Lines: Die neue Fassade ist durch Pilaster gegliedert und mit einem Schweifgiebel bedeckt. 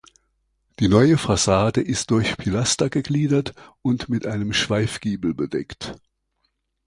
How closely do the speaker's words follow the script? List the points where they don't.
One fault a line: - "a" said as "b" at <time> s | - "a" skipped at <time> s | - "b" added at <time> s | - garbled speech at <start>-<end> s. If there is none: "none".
none